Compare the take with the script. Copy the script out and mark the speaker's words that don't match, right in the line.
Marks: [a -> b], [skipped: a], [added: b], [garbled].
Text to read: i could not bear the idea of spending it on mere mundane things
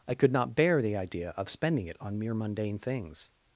i could not bear the idea of spending it on mere mundane things